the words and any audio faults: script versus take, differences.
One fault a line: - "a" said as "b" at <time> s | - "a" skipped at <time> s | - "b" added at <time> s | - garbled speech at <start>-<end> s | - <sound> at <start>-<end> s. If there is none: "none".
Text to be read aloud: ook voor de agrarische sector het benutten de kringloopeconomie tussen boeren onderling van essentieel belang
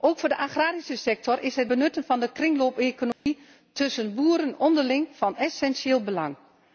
- "is" added at 1.4 s
- "van" added at 2.0 s
- dropout at 3.1-3.3 s